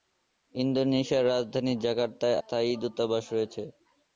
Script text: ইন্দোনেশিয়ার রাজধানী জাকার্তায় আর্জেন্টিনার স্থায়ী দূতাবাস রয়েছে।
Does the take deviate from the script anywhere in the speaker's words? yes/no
yes